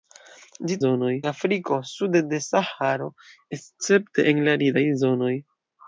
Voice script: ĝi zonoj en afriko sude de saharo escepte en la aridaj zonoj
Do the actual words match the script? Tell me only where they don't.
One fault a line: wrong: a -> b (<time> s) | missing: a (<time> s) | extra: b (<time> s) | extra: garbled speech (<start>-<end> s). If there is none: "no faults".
no faults